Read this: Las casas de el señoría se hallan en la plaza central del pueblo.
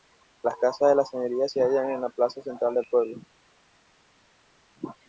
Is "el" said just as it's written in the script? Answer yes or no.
no